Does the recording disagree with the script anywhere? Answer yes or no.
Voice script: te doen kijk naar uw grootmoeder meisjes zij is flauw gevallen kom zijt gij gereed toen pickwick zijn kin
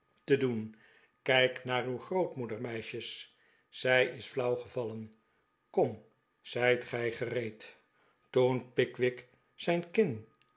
no